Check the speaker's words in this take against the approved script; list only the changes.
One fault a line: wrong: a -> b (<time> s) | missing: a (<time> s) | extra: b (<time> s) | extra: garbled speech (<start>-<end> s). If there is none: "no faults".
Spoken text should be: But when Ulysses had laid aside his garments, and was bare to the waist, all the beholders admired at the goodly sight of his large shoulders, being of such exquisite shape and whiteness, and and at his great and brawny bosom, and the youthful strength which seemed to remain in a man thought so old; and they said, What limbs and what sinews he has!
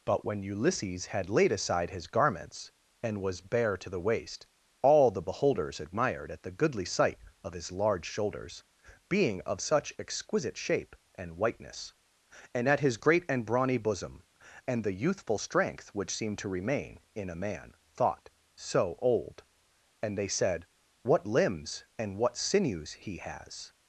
missing: and (12.7 s)